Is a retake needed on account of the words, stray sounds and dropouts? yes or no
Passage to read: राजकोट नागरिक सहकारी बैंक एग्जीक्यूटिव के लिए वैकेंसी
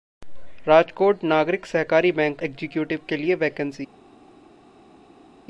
no